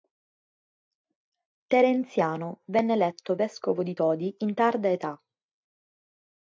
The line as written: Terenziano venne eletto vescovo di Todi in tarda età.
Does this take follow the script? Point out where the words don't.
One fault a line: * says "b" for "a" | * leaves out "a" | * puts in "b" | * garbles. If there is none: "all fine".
all fine